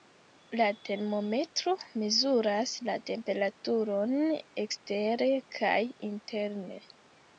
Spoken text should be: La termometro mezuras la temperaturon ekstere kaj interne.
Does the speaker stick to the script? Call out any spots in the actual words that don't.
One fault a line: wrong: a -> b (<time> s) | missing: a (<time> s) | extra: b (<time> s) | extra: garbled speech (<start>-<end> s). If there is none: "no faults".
no faults